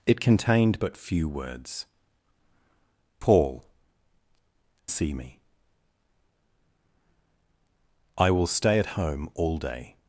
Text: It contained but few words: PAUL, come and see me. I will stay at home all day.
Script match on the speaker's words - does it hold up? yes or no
no